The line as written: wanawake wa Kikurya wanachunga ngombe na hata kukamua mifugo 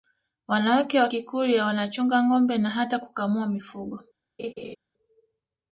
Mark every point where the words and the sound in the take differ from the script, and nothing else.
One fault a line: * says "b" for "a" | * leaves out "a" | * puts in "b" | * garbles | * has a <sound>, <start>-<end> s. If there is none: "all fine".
* has a laugh, 4.4-4.8 s